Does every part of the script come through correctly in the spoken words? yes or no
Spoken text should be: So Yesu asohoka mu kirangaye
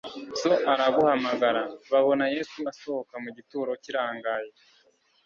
no